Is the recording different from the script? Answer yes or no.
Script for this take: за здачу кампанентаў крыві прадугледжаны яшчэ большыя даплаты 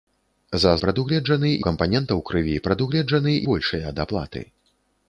yes